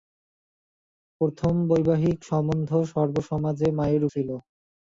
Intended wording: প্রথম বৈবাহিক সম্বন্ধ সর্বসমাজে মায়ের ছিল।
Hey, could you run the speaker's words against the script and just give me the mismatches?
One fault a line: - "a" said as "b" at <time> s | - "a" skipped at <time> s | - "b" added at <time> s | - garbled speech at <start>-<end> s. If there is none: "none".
none